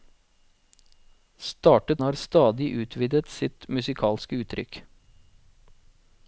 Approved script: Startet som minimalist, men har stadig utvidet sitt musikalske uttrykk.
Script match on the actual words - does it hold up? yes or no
no